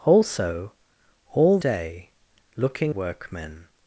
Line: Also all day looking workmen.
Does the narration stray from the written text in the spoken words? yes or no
no